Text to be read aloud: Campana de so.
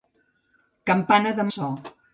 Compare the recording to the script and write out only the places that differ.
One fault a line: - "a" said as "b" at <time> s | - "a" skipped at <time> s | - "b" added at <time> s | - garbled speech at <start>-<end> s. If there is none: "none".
none